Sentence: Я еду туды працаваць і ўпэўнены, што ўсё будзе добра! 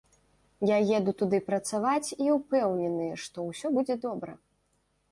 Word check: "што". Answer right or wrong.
right